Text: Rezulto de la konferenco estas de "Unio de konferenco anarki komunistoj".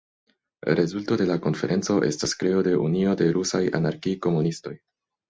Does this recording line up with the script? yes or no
no